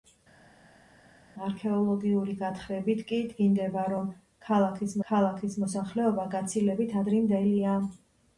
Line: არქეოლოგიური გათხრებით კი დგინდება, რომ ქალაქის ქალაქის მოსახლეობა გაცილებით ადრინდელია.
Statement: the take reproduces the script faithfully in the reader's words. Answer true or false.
true